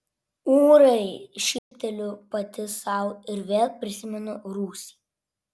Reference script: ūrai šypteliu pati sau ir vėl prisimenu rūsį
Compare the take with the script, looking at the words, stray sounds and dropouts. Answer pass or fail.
fail